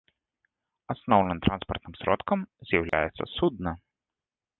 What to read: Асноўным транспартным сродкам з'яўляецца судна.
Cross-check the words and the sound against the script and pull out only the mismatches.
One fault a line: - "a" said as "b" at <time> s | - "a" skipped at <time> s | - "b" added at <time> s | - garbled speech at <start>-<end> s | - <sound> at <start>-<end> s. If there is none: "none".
- dropout at 2.9-2.9 s